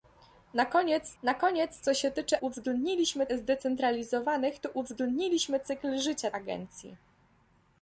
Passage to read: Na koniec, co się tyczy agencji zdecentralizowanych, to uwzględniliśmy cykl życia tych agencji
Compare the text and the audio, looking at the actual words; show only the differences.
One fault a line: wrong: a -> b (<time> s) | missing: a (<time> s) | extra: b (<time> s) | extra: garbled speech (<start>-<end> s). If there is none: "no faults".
extra: na koniec (1.2 s)
wrong: agencji -> uwzględniliśmy (2.4 s)
missing: tych (6.3 s)